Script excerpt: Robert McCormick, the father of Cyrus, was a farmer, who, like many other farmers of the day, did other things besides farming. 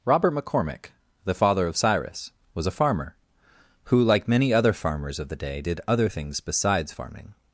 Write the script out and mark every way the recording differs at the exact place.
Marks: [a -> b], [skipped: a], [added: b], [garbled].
Robert McCormick, the father of Cyrus, was a farmer, who, like many other farmers of the day, did other things besides farming.